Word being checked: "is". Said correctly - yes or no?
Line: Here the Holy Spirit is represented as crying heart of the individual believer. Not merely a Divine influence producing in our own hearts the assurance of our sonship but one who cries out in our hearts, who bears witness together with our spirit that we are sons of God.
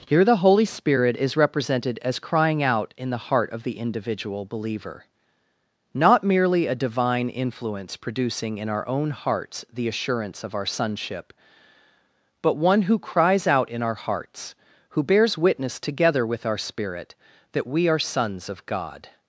yes